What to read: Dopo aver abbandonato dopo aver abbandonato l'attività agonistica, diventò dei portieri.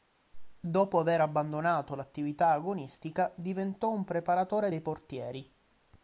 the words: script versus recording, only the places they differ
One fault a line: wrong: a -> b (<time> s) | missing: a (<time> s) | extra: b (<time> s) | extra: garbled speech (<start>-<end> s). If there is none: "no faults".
missing: dopo aver abbandonato (1.9 s)
extra: un preparatore (3.9 s)